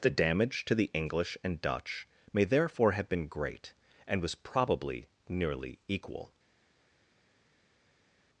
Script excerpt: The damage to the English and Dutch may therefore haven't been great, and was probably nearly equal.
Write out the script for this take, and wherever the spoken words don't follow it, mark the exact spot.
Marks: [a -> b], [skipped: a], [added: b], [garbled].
The damage to the English and Dutch may therefore [haven't -> have] been great, and was probably nearly equal.